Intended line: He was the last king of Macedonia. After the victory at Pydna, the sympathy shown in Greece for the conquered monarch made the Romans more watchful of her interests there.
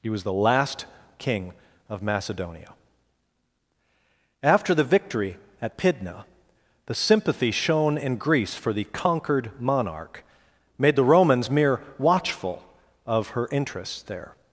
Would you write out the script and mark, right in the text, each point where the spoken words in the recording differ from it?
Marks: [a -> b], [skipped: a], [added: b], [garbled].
He was the last king of Macedonia. After the victory at Pydna, the sympathy shown in Greece for the conquered monarch made the Romans [more -> mere] watchful of her interests there.